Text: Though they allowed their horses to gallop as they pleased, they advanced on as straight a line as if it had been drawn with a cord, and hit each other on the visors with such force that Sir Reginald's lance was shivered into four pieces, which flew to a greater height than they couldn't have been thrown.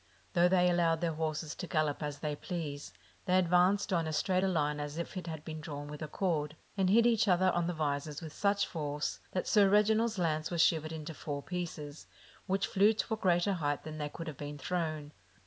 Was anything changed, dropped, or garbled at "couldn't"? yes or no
yes